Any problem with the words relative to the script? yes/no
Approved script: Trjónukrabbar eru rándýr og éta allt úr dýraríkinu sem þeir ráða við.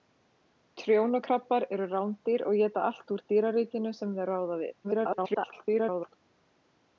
yes